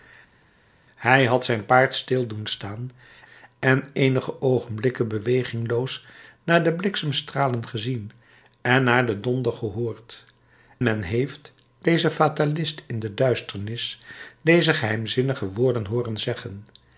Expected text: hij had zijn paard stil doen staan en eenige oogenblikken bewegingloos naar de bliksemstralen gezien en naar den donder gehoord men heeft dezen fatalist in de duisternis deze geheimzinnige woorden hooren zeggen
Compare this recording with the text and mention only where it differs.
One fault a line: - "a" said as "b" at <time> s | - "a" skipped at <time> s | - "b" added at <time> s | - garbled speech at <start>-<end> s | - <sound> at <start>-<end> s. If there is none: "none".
none